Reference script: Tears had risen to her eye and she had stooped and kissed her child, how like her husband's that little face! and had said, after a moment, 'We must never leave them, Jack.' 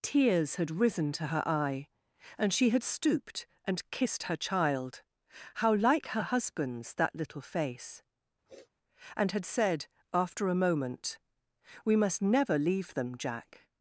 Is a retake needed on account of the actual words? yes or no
no